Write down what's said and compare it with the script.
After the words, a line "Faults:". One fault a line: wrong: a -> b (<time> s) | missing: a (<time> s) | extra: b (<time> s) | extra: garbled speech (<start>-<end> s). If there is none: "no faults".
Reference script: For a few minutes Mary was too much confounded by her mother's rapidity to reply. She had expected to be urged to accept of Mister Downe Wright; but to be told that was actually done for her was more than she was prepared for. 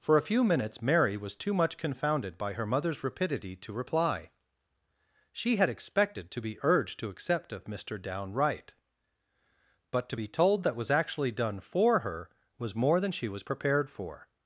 For a few minutes Mary was too much confounded by her mother's rapidity to reply. She had expected to be urged to accept of Mister Downe Wright; but to be told that was actually done for her was more than she was prepared for.
Faults:
no faults